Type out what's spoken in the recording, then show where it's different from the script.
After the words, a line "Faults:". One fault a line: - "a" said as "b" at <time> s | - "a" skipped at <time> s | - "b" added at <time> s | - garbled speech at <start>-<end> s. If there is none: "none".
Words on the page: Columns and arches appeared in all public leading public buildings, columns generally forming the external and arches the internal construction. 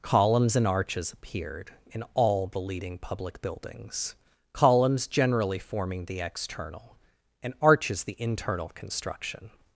Columns and arches appeared in all the leading public buildings, columns generally forming the external and arches the internal construction.
Faults:
- "public" said as "the" at 2.5 s